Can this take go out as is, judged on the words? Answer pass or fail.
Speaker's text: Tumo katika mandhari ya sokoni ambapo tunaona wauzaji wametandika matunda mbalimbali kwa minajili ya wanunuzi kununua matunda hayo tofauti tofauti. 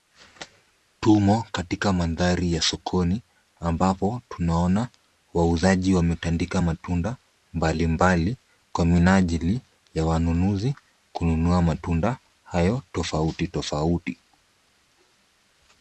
pass